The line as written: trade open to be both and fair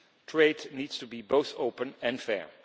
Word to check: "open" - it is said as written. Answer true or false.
false